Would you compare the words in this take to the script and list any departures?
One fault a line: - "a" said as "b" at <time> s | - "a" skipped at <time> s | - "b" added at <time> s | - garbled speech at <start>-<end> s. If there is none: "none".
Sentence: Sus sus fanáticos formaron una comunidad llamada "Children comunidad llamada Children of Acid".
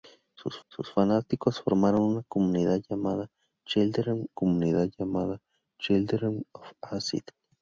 none